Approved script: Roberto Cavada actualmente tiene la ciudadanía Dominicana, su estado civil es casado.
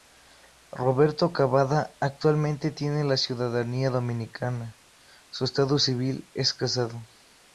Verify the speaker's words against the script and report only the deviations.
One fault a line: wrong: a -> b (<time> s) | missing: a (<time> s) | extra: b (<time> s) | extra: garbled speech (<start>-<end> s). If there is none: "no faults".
no faults